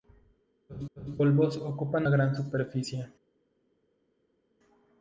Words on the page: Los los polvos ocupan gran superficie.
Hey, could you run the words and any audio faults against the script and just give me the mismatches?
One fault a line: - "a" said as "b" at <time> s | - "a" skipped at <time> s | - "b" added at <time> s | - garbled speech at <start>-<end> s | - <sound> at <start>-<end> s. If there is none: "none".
none